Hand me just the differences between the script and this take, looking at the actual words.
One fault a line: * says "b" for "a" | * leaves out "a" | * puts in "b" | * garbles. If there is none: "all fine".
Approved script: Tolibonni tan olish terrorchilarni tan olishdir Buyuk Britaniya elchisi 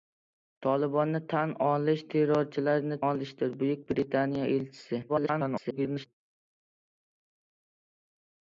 * leaves out "tan"
* garbles